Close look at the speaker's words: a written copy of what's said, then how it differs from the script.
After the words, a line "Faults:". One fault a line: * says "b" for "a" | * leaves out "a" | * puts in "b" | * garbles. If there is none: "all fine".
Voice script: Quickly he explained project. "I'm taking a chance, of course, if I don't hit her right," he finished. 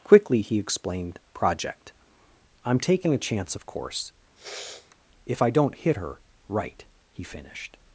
Quickly he explained project. "I'm taking a chance, of course, if I don't hit her right," he finished.
Faults:
all fine